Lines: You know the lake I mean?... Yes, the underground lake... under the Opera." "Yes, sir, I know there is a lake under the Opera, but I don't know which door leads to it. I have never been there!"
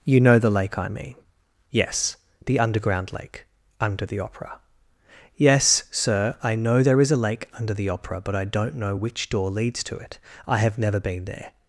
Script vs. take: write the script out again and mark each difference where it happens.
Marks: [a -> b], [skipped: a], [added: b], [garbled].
You know the lake I mean?... Yes, the underground lake... under the Opera." "Yes, sir, I know there is a lake under the Opera, but I don't know which door leads to it. I have never been there!"